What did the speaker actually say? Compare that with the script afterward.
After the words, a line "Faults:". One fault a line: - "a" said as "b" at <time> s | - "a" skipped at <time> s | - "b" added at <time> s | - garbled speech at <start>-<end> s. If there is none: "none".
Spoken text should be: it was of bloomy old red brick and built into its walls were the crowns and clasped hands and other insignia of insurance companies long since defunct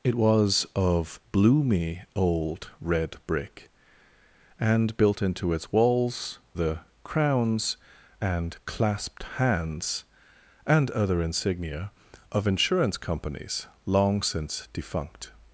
it was of bloomy old red brick and built into its walls the crowns and clasped hands and other insignia of insurance companies long since defunct
Faults:
- "were" skipped at 6.4 s